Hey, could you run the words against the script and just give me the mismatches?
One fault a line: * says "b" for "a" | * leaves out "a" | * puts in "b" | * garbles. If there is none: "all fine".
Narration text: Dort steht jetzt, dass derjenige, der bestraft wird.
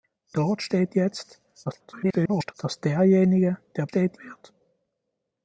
* garbles
* says "steht" for "bestraft"